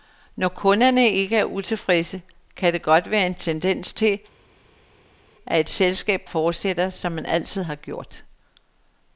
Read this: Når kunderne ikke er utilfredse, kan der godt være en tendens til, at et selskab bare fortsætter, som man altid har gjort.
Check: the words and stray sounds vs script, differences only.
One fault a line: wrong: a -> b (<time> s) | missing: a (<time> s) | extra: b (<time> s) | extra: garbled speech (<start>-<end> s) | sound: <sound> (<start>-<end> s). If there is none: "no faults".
missing: bare (6.2 s)